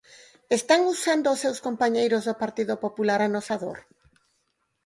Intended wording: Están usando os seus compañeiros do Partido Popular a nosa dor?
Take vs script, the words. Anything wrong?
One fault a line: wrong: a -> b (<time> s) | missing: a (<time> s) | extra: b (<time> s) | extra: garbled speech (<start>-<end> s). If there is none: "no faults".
no faults